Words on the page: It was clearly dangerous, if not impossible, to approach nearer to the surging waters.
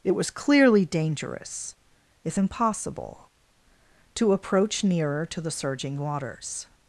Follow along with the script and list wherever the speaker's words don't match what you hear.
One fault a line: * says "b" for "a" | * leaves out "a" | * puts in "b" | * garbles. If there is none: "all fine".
* leaves out "not"